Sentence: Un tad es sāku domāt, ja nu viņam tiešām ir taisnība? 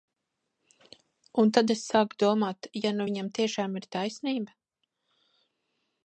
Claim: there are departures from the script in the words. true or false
false